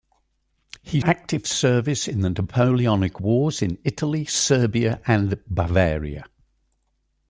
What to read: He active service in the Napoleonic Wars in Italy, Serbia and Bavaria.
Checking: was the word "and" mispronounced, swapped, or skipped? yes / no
no